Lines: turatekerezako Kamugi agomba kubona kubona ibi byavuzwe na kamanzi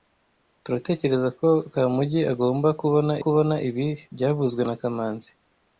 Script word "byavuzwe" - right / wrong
right